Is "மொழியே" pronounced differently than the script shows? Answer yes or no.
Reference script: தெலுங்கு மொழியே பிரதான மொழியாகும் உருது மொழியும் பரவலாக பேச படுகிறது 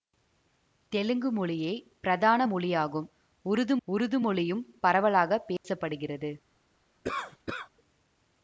no